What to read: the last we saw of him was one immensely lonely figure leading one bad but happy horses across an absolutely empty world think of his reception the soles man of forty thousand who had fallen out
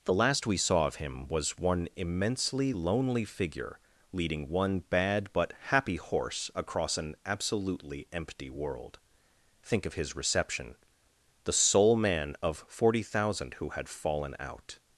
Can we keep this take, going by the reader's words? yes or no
no